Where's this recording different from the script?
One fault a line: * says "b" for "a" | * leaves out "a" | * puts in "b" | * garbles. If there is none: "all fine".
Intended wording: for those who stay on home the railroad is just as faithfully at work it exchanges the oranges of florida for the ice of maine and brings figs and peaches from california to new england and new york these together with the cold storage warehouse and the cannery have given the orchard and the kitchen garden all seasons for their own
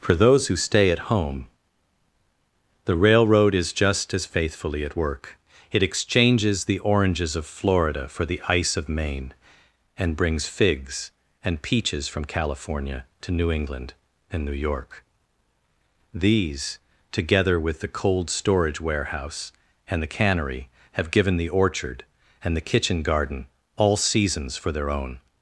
* says "at" for "on"